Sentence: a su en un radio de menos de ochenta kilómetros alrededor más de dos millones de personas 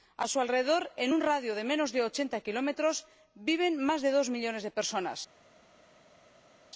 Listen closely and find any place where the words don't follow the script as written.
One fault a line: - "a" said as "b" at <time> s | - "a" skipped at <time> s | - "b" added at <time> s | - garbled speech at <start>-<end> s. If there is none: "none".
- "alrededor" added at 0.4 s
- "alrededor" said as "viven" at 3.5 s